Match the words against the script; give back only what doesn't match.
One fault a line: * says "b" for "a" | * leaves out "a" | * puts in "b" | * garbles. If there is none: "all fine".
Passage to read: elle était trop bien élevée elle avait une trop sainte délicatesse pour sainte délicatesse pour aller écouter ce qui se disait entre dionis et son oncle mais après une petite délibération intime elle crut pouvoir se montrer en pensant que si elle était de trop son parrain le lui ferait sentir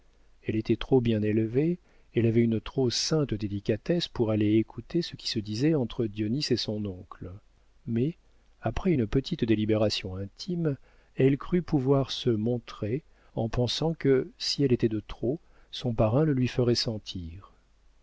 * leaves out "sainte délicatesse pour"